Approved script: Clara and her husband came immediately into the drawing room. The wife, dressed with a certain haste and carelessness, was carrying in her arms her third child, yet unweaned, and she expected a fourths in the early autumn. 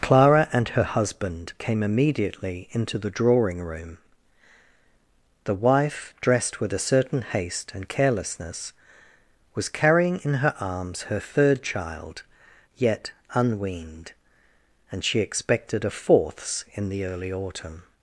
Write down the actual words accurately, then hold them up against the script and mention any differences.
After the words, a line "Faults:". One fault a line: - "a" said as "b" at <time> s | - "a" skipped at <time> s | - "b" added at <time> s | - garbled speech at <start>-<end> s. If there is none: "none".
Clara and her husband came immediately into the drawing room. The wife, dressed with a certain haste and carelessness, was carrying in her arms her third child, yet unweaned, and she expected a fourths in the early autumn.
Faults:
none